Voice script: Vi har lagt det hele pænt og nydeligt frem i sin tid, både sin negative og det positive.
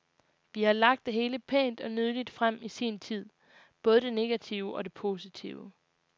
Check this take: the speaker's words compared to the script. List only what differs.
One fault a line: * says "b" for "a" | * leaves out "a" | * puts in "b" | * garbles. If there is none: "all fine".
* says "det" for "sin"